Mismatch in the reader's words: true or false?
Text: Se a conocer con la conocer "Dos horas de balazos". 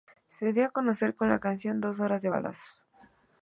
true